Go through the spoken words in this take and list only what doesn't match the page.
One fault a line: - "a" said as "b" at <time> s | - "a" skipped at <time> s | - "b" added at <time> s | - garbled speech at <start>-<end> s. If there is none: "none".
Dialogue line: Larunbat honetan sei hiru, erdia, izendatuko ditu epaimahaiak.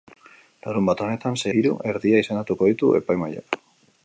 none